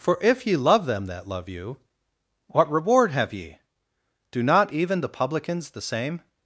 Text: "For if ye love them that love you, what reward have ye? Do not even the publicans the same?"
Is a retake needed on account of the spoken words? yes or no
no